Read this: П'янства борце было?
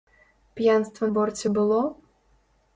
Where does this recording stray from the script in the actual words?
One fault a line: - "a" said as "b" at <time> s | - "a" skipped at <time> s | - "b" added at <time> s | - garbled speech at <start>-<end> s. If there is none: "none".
none